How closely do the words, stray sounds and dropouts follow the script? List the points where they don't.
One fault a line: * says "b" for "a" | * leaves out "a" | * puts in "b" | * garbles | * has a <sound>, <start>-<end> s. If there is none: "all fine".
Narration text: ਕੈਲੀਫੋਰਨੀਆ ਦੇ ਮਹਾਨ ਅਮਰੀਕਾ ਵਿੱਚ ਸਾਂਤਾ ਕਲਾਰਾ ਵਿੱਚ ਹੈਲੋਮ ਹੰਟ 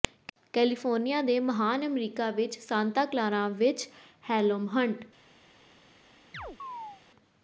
* has a chirp, 6.3-7.0 s